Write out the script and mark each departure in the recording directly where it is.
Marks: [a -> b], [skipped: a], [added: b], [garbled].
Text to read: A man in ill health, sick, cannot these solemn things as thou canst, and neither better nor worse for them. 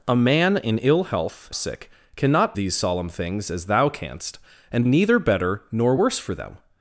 A man in ill health, sick, cannot these solemn things as thou canst, and neither better nor worse for them.